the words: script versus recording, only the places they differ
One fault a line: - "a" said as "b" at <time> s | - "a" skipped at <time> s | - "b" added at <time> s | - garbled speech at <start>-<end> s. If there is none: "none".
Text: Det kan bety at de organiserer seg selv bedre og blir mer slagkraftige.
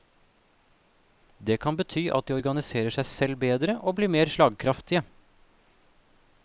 none